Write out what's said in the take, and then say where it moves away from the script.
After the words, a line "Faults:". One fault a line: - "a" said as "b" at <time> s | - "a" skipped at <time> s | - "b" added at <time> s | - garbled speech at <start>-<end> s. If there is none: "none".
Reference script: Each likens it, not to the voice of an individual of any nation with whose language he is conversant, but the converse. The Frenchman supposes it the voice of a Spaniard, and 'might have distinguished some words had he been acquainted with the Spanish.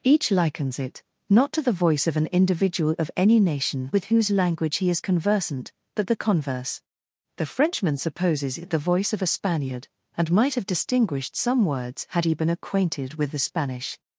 Each likens it, not to the voice of an individual of any nation with whose language he is conversant, but the converse. The Frenchman supposes it the voice of a Spaniard, and 'might have distinguished some words had he been acquainted with the Spanish.
Faults:
none